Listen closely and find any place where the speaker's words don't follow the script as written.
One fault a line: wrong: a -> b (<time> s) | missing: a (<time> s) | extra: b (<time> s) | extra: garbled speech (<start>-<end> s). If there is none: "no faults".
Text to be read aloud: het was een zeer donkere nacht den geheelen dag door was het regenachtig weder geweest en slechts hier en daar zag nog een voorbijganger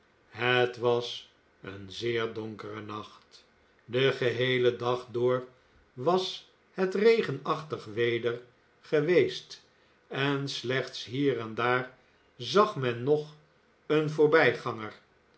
extra: men (12.8 s)